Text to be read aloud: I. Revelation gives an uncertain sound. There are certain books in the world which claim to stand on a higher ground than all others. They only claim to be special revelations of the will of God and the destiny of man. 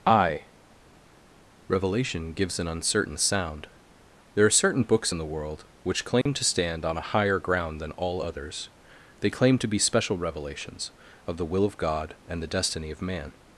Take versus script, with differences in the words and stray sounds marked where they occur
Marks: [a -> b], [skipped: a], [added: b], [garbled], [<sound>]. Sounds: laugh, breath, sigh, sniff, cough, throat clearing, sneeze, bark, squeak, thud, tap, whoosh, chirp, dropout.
I. Revelation gives an uncertain sound. There are certain books in the world which claim [dropout] to stand on a higher ground than all others. They [skipped: only] claim to be special revelations of the will of God and the destiny of man.